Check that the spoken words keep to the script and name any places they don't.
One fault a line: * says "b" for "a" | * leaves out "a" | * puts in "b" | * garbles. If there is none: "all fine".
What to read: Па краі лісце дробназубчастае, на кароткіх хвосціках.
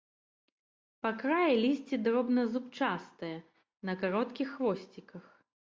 all fine